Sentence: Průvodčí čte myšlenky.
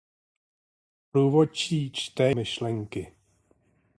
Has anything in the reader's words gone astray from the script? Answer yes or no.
no